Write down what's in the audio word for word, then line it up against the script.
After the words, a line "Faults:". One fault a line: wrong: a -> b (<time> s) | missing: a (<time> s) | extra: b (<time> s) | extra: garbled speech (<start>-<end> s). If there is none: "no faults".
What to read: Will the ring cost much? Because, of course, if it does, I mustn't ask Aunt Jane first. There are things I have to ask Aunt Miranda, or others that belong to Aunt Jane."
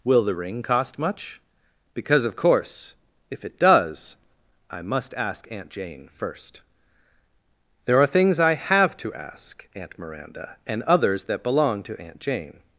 Will the ring cost much? Because, of course, if it does, I must ask Aunt Jane first. There are things I have to ask Aunt Miranda, and others that belong to Aunt Jane."
Faults:
wrong: mustn't -> must (4.8 s)
wrong: or -> and (10.7 s)